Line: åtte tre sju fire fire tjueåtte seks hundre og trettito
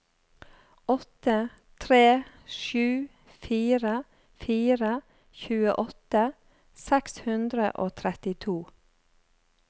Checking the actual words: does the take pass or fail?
pass